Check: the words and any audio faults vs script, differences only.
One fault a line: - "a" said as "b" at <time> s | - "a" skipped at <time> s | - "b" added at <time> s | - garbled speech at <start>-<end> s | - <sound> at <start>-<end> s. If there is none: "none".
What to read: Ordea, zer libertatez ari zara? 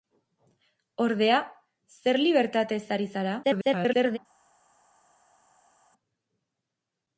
- garbled speech at 3.4-4.2 s